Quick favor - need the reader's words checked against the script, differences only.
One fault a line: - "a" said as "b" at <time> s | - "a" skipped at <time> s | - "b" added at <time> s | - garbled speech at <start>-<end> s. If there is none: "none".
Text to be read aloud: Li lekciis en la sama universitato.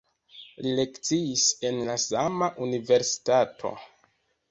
none